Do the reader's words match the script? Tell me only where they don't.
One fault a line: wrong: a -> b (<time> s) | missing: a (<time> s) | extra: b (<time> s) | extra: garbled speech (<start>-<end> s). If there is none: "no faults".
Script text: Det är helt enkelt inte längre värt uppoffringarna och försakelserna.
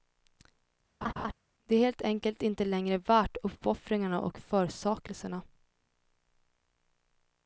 no faults